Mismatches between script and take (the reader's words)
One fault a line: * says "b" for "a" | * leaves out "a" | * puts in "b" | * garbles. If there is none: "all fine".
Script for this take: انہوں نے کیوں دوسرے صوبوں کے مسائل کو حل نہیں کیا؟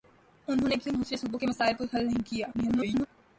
* garbles